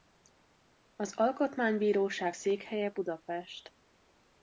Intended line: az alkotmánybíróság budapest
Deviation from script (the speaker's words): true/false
true